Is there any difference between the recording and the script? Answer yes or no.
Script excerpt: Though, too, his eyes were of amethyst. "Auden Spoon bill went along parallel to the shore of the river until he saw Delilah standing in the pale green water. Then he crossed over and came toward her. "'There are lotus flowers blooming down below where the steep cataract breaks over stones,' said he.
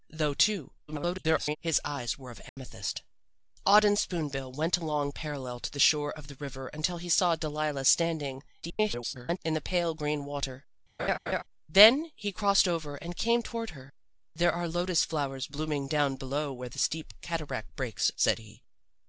yes